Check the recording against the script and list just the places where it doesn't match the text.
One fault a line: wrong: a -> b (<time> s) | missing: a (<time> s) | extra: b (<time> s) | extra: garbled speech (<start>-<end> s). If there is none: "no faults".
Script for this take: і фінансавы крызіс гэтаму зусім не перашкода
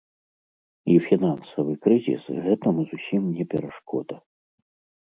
no faults